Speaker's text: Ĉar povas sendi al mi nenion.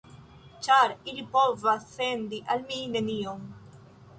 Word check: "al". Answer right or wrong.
right